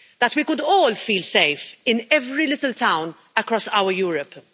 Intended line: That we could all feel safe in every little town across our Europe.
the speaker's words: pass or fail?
pass